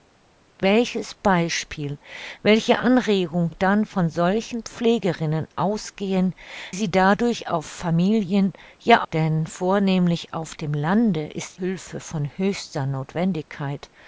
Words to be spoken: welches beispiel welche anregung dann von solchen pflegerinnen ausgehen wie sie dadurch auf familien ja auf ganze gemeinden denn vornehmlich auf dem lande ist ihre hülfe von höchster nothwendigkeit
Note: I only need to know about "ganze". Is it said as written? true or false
false